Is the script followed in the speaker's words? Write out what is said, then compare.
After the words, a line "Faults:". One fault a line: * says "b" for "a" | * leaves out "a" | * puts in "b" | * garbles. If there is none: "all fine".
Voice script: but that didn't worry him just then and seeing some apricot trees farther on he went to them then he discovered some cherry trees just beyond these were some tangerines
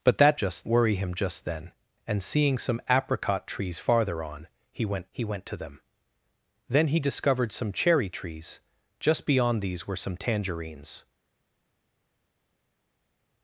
but that just worry him just then and seeing some apricot trees farther on he went he went to them then he discovered some cherry trees just beyond these were some tangerines
Faults:
* says "just" for "didn't"
* puts in "he went"